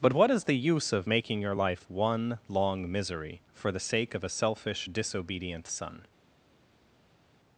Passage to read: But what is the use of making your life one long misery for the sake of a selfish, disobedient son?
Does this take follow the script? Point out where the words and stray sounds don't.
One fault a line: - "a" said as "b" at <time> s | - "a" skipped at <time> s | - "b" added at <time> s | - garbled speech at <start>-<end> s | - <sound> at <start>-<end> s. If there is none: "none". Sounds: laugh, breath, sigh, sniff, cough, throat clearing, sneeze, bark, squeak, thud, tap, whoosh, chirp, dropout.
none